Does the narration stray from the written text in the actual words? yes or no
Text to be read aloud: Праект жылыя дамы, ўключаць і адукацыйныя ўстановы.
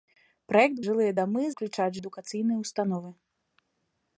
no